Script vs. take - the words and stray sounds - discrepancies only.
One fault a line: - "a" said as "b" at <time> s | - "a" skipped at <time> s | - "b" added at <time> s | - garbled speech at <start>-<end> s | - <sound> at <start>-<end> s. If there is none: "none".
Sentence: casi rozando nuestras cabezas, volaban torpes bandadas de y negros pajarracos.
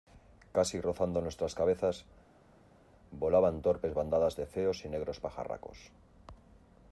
- "feos" added at 4.5 s